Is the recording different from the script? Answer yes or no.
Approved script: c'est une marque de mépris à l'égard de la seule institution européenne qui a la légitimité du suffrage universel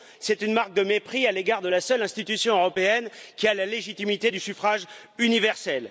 no